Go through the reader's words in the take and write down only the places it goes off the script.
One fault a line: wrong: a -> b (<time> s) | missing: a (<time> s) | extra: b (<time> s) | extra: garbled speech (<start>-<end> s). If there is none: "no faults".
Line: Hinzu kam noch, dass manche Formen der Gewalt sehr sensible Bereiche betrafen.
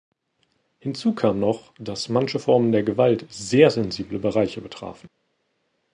no faults